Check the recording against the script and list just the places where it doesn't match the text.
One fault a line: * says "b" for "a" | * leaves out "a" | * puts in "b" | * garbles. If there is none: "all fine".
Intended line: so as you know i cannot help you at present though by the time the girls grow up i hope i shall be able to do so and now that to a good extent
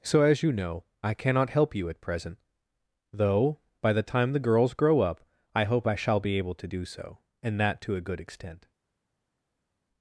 * leaves out "now"